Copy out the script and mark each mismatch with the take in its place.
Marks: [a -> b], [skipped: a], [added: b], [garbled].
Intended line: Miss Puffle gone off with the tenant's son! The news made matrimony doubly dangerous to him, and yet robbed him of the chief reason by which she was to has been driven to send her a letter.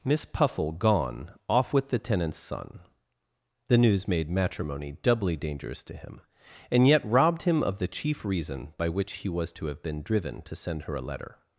Miss Puffle gone off with the tenant's son! The news made matrimony doubly dangerous to him, and yet robbed him of the chief reason by which [she -> he] was to [has -> have] been driven to send her a letter.